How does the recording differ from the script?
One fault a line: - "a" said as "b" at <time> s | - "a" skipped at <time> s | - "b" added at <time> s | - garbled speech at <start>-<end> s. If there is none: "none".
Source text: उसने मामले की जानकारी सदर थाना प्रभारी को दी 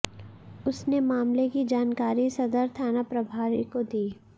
none